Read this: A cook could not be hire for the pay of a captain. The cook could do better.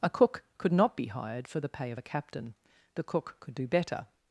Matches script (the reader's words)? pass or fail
fail